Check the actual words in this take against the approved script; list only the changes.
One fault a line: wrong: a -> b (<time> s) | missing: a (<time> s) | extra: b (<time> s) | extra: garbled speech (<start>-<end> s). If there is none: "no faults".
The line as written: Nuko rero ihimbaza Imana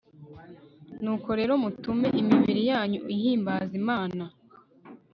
extra: mutume imibiri yanyu (1.6 s)